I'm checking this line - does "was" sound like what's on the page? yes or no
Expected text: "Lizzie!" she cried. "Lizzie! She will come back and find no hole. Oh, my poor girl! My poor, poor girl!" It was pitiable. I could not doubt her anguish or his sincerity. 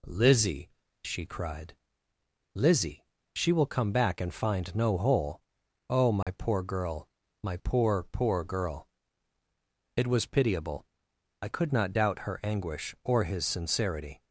yes